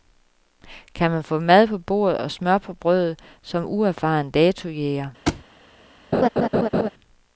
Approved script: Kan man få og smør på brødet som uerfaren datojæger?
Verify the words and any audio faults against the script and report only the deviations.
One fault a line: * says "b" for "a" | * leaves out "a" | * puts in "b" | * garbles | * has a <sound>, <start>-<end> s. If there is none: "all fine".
* puts in "mad på bordet"
* has a thud, 5.3-5.4 s
* has a laugh, 6.1-6.9 s